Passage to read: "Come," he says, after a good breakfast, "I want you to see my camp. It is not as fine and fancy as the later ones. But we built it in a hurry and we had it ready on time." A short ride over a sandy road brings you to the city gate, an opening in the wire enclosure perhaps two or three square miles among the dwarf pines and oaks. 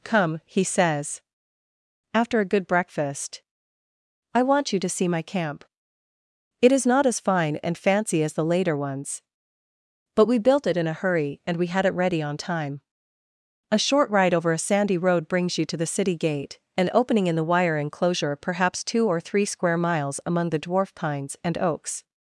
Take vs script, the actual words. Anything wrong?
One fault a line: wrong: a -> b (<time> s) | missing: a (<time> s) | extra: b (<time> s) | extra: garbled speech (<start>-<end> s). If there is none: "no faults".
no faults